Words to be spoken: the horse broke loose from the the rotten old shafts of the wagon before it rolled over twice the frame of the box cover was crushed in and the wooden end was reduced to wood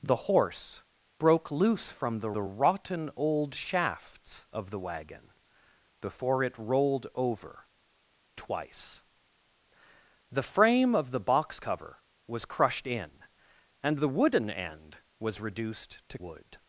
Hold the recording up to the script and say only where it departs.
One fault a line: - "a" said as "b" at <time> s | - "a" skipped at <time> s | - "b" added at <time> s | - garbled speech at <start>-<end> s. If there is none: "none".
none